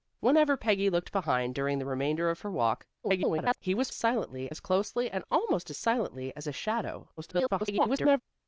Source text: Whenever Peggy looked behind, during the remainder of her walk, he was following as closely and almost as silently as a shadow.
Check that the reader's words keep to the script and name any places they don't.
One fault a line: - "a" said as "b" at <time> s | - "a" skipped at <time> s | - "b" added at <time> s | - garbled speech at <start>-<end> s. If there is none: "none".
- garbled speech at 3.0-3.6 s
- "following" said as "silently" at 3.9 s
- garbled speech at 7.2-8.2 s